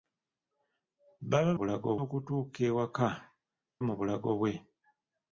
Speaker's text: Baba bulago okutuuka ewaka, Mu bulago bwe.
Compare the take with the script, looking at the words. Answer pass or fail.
pass